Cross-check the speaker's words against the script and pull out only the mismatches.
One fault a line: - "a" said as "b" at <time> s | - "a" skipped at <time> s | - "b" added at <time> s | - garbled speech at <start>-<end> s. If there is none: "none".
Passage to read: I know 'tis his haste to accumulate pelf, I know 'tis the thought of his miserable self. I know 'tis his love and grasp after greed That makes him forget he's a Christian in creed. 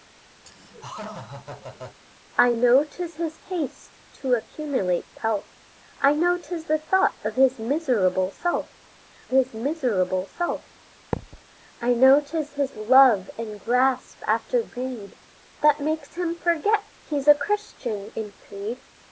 - "his miserable self" added at 9.3 s